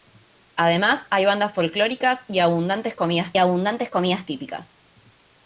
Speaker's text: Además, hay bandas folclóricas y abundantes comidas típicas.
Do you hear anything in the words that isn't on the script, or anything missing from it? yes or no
yes